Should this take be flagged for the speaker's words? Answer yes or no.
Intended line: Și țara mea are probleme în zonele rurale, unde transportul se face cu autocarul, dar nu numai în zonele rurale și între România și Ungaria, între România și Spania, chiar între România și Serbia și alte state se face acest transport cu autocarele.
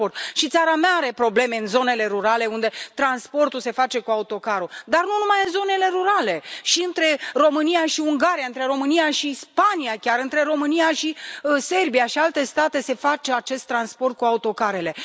no